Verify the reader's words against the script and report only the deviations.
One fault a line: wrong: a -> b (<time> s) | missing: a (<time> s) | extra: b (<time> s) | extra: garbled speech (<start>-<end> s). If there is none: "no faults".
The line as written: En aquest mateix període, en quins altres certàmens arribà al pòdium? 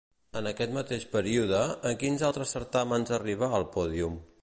no faults